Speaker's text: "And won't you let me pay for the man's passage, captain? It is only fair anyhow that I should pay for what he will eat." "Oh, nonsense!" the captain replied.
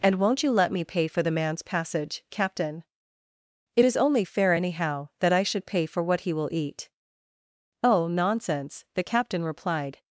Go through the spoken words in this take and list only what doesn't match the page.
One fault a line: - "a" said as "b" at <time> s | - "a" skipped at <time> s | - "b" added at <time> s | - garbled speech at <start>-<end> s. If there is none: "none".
none